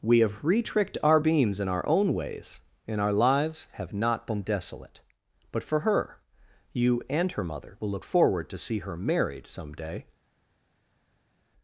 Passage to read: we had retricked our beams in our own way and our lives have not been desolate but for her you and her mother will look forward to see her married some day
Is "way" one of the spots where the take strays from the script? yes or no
yes